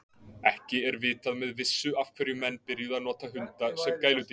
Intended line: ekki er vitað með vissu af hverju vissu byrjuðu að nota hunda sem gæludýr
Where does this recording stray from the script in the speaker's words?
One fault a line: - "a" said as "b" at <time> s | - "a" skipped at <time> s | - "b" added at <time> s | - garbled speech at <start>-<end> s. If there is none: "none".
- "vissu" said as "menn" at 2.4 s